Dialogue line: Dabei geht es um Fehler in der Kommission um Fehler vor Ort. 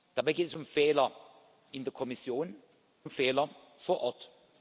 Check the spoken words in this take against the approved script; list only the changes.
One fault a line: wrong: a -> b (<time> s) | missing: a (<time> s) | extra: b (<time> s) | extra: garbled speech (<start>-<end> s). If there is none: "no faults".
no faults